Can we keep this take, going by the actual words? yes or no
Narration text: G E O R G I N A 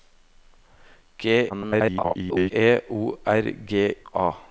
no